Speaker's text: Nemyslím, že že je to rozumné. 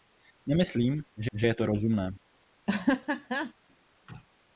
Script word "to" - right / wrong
right